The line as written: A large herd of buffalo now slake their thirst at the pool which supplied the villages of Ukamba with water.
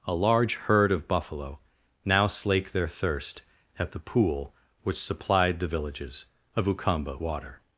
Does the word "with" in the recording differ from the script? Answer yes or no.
yes